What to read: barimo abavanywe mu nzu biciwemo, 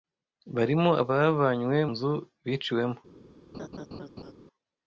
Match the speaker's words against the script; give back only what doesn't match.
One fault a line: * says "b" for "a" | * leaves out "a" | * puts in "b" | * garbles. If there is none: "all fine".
* leaves out "mu"